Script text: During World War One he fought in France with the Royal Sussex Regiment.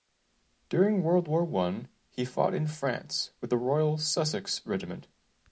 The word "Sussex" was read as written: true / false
true